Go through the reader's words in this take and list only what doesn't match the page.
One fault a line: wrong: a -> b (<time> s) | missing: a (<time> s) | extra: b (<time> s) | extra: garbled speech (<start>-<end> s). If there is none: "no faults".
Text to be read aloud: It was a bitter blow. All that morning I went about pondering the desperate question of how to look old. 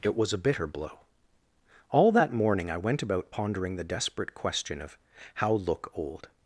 missing: to (5.5 s)